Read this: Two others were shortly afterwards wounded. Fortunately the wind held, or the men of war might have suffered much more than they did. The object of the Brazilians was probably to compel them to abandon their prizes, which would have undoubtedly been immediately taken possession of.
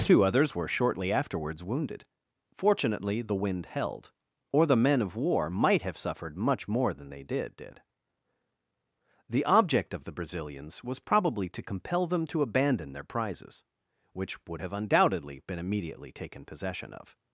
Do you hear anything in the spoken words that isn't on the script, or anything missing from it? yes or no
yes